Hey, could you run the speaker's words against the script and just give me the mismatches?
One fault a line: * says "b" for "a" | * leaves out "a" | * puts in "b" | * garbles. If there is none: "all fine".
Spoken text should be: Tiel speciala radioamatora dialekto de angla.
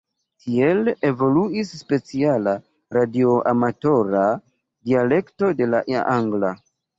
* puts in "evoluis"
* puts in "la"